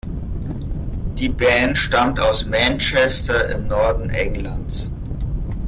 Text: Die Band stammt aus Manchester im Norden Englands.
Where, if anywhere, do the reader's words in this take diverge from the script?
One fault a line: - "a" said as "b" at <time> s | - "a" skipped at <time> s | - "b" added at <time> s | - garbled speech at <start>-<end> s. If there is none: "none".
none